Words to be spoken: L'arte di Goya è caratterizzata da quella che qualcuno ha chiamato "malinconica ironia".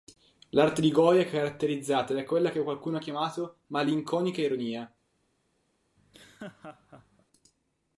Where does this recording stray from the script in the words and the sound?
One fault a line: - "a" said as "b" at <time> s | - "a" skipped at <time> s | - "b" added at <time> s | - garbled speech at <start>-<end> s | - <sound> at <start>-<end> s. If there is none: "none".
- laugh at 6.0-7.3 s